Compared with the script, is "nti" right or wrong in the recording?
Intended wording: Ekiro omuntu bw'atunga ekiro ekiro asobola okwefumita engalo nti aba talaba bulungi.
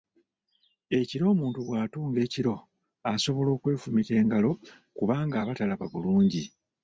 wrong